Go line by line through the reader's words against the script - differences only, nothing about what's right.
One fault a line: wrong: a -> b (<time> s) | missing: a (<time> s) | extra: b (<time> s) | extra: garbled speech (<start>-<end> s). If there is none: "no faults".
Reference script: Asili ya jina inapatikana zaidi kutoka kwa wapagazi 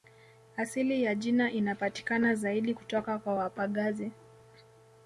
no faults